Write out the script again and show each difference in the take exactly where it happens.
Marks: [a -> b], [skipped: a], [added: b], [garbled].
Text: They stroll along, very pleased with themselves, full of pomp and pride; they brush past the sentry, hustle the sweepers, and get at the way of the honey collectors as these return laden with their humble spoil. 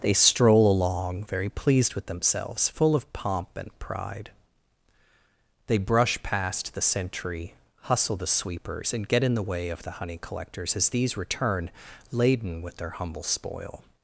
They stroll along, very pleased with themselves, full of pomp and pride; they brush past the sentry, hustle the sweepers, and get [at -> in] the way of the honey collectors as these return laden with their humble spoil.